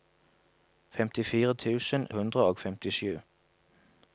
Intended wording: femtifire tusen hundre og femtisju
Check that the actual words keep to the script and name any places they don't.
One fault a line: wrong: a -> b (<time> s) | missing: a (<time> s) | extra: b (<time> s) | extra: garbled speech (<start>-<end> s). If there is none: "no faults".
no faults